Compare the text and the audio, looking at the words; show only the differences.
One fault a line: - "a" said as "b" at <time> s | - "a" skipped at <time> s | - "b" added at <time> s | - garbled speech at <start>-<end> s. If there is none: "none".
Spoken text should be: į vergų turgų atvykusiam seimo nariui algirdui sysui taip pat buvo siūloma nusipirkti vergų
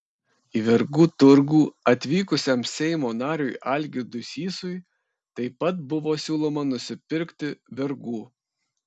none